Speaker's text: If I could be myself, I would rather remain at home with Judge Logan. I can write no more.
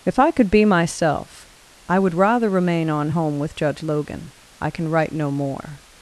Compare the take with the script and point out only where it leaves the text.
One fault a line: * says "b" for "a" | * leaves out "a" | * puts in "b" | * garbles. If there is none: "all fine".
* says "on" for "at"